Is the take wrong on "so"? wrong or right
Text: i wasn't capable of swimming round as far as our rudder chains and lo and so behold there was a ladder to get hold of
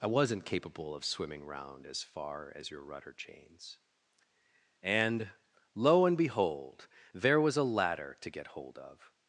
wrong